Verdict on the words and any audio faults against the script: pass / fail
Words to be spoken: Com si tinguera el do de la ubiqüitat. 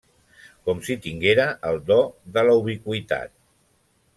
pass